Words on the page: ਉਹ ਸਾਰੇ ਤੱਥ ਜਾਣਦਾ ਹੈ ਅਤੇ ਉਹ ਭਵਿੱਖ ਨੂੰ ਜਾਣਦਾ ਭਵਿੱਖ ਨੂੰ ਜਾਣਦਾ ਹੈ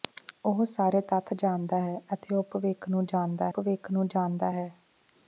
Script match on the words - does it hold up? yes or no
yes